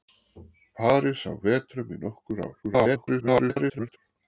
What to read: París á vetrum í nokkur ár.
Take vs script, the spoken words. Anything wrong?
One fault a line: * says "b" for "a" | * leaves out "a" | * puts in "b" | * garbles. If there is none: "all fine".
* garbles